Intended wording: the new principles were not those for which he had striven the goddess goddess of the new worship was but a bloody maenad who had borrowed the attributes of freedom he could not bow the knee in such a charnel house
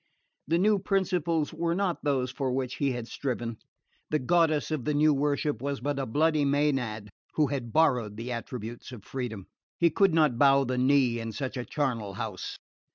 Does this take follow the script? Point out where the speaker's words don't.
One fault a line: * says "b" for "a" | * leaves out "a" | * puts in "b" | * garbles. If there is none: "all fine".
* leaves out "goddess"